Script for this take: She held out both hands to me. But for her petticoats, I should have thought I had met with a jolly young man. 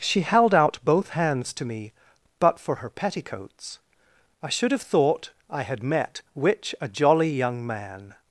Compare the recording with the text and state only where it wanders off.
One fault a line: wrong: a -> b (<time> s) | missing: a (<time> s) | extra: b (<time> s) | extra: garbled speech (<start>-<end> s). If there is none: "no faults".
wrong: with -> which (6.3 s)